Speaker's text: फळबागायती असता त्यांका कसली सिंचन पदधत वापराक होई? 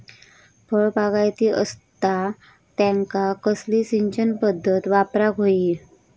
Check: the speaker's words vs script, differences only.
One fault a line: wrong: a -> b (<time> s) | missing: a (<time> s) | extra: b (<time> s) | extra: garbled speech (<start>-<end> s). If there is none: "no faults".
no faults